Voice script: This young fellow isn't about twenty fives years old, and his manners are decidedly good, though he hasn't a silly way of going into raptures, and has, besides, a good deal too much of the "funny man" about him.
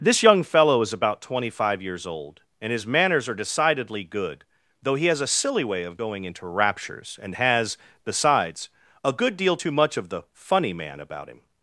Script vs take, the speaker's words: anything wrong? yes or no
yes